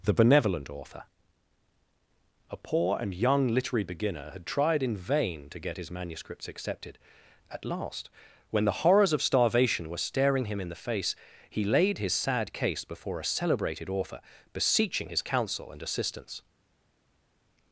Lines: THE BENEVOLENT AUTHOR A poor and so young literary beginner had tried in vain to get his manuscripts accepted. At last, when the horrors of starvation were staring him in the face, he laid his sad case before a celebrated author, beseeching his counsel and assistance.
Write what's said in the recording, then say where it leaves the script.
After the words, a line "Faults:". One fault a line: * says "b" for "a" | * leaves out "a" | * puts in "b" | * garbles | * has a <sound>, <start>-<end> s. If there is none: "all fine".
THE BENEVOLENT AUTHOR A poor and young literary beginner had tried in vain to get his manuscripts accepted. At last, when the horrors of starvation were staring him in the face, he laid his sad case before a celebrated author, beseeching his counsel and assistance.
Faults:
* leaves out "so"